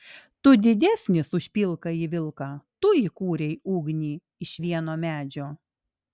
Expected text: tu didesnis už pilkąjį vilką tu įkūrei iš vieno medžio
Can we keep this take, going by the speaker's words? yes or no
no